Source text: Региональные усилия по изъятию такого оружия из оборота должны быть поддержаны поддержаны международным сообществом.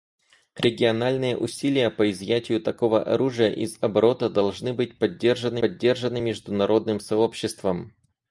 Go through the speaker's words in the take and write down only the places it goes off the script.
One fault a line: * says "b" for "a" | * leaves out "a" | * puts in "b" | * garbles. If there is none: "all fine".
all fine